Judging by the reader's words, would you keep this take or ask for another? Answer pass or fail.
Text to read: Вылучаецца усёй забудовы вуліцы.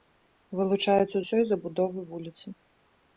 pass